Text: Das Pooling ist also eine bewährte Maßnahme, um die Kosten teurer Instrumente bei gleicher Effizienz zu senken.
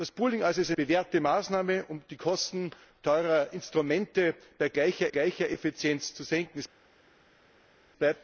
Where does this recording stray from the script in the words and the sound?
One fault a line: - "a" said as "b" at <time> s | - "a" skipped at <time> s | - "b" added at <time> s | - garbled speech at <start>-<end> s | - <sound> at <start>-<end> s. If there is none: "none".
- "eine" skipped at 0.7 s
- "gleicher" added at 5.1 s